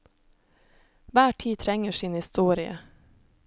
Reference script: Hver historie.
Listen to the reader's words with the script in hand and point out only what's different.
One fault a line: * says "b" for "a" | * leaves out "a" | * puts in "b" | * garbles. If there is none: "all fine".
* puts in "tid trenger sin"